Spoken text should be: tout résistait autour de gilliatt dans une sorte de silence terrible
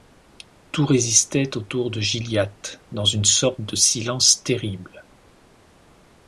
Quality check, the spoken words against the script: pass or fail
pass